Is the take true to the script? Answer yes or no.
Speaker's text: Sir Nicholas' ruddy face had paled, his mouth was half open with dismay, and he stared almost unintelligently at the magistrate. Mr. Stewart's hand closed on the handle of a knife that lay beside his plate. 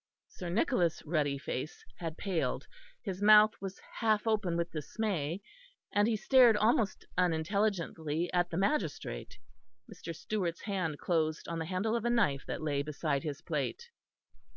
yes